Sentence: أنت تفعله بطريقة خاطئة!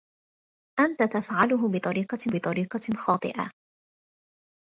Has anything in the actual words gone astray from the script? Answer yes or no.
yes